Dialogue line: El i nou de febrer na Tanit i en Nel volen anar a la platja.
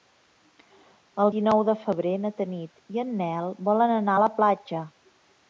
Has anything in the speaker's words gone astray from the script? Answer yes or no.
no